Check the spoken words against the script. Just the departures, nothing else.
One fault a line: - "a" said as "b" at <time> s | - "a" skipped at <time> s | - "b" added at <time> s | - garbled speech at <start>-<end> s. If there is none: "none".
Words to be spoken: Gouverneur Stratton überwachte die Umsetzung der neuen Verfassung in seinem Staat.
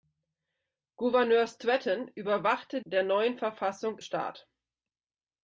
- "die Umsetzung" skipped at 2.8 s
- "in seinem" skipped at 4.0 s